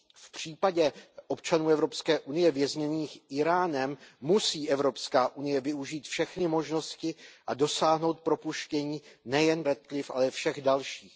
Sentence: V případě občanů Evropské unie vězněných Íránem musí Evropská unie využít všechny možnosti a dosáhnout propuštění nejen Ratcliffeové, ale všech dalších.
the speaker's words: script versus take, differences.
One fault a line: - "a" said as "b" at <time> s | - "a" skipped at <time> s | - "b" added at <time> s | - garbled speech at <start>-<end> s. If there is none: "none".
none